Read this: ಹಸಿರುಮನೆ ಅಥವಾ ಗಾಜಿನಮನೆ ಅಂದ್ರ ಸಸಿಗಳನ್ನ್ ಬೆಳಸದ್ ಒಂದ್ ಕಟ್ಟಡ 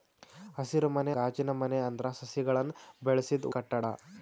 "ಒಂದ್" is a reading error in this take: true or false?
true